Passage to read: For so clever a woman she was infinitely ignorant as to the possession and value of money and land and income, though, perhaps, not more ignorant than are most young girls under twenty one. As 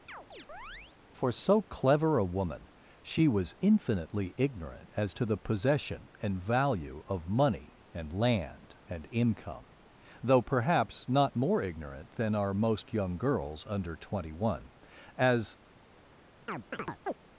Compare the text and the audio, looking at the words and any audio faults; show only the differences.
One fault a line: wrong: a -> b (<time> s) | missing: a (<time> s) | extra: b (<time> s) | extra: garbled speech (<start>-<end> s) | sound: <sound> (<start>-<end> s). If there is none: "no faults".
sound: chirp (0.1-1.0 s)
sound: chirp (16.5-17.2 s)